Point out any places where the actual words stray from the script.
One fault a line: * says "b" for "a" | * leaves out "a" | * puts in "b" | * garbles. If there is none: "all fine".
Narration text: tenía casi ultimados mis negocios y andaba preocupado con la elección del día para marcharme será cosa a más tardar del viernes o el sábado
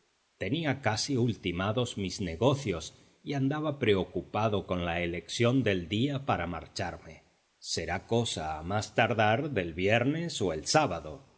all fine